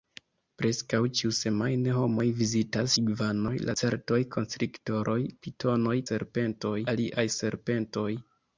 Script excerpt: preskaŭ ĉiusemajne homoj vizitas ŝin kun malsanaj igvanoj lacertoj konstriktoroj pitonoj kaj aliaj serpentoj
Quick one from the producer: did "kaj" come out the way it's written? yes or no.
no